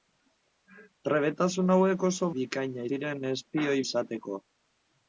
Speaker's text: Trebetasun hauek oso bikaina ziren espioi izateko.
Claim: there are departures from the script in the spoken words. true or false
false